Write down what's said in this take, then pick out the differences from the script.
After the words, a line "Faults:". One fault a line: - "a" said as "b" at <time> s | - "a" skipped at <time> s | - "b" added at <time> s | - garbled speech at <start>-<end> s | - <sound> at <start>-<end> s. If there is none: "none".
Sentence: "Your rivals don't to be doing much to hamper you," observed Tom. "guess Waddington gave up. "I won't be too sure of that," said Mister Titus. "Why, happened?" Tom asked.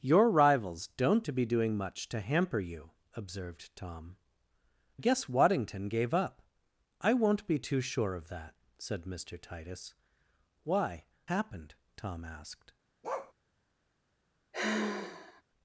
"Your rivals don't to be doing much to hamper you," observed Tom. "guess Waddington gave up. "I won't be too sure of that," said Mister Titus. "Why, happened?" Tom asked.
Faults:
- bark at 13.0-13.3 s
- sigh at 14.5-15.4 s